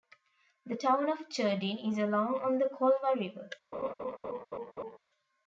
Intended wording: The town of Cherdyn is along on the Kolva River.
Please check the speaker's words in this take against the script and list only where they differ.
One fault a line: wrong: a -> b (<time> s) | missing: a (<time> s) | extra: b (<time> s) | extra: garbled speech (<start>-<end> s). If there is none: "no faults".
no faults